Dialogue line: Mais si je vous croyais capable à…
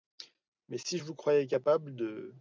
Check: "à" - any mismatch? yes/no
yes